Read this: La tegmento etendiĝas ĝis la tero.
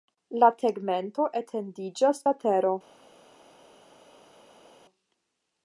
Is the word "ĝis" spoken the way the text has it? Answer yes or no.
no